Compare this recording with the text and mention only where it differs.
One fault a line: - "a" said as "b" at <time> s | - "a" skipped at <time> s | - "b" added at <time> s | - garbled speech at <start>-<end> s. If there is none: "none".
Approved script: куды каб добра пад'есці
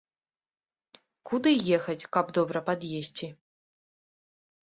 - "ехаць" added at 1.8 s